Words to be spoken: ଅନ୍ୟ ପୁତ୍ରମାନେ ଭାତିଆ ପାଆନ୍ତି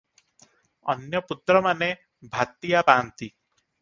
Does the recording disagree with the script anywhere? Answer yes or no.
no